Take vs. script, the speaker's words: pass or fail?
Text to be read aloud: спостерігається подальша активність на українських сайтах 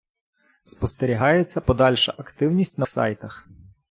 fail